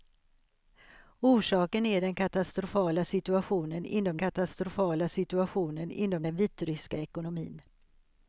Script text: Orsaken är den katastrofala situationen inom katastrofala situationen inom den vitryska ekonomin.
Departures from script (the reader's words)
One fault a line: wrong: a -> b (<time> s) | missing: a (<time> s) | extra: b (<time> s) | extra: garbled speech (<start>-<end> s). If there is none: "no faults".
no faults